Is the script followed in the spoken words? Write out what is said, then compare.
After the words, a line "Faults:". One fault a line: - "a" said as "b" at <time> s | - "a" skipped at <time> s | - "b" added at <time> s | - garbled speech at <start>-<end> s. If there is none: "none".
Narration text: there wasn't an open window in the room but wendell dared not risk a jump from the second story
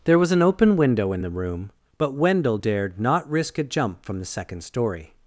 there was an open window in the room but wendell dared not risk a jump from the second story
Faults:
- "wasn't" said as "was" at 0.2 s